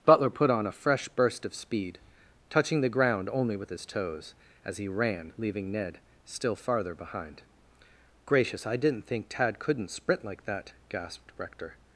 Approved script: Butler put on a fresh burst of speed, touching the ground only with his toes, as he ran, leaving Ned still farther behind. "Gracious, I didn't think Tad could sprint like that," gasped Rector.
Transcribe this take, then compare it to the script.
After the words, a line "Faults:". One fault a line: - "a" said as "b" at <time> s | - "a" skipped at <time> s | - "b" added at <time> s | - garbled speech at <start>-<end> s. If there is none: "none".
Butler put on a fresh burst of speed, touching the ground only with his toes, as he ran, leaving Ned still farther behind. "Gracious, I didn't think Tad couldn't sprint like that," gasped Rector.
Faults:
- "could" said as "couldn't" at 9.6 s